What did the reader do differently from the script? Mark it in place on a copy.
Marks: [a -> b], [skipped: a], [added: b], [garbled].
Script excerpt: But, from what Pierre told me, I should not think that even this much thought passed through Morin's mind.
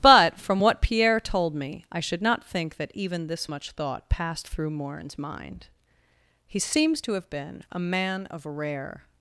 But, from what Pierre told me, I should not think that even this much thought passed through Morin's mind. [added: He seems to have been a man of rare]